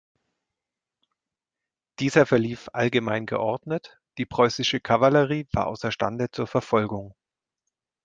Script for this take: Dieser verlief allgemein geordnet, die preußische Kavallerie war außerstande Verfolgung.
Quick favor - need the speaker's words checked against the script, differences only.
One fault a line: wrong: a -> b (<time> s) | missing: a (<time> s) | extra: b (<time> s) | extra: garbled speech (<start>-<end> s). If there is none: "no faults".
extra: zur (6.3 s)